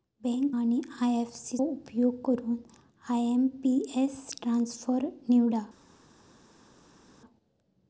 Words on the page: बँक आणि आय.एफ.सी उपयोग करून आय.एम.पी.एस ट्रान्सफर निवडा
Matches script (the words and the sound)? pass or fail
pass